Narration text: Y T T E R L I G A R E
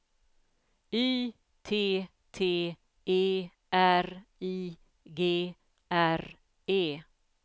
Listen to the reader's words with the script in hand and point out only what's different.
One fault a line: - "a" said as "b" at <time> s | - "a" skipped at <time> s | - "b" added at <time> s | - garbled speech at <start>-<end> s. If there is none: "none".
- "L" skipped at 4.3 s
- "A" skipped at 5.6 s